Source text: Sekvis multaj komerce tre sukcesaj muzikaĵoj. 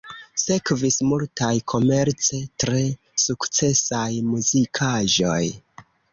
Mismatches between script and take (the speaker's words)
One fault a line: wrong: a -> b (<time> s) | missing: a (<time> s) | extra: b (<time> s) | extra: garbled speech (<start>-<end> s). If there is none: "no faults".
no faults